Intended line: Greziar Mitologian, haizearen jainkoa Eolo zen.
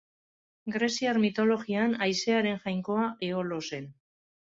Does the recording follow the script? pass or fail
pass